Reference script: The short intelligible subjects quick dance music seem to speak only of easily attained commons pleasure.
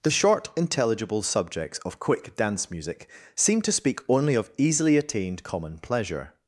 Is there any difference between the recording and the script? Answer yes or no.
yes